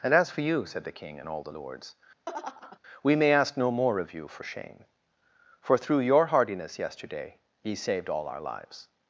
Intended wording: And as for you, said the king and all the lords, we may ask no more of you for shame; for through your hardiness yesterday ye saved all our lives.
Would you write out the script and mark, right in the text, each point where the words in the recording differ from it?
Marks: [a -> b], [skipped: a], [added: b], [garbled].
And as for you, said the king and all the lords, we may ask no more of you for shame; for through your hardiness yesterday ye saved all our lives.